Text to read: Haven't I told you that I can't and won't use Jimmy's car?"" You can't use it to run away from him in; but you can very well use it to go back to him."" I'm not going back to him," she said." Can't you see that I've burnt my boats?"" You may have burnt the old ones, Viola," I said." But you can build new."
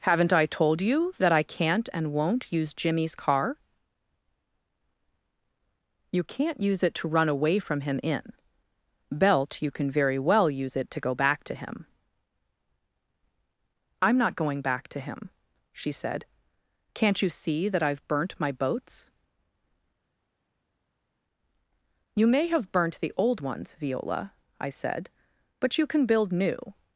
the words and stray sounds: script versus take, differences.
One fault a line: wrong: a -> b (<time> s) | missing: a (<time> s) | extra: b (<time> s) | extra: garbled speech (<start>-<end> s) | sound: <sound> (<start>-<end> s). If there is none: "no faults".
wrong: but -> belt (9.1 s)